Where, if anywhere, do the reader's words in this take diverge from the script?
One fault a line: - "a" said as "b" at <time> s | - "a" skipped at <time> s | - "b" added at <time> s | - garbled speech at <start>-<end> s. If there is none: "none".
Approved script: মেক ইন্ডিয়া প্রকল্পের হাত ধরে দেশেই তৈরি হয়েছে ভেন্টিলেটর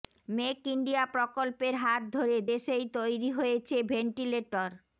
none